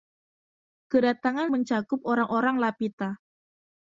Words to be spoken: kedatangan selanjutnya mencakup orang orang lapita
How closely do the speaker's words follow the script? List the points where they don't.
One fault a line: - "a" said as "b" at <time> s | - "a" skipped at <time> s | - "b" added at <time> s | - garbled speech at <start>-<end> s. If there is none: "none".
- "selanjutnya" skipped at 1.5 s